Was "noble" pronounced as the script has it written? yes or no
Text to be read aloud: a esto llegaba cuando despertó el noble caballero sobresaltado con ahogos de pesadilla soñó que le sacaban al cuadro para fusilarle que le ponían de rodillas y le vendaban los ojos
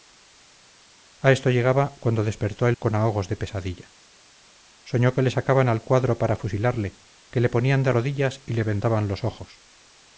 no